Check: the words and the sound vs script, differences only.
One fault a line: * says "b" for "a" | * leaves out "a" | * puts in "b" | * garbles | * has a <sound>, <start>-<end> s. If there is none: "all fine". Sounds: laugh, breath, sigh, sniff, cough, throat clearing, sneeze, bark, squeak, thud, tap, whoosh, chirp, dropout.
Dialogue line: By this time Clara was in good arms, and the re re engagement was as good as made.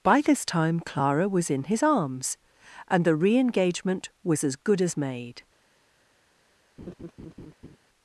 * says "his" for "good"
* leaves out "re"
* has a laugh, 6.8-7.8 s